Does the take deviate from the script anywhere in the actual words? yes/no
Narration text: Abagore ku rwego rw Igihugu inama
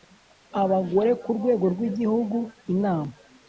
no